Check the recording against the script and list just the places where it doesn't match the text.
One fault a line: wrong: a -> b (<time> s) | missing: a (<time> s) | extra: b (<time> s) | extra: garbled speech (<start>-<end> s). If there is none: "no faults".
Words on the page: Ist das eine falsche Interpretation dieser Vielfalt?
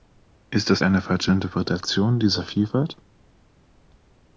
no faults